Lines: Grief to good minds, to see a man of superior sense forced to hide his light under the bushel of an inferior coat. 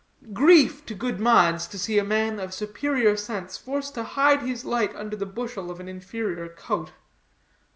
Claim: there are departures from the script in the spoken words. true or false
false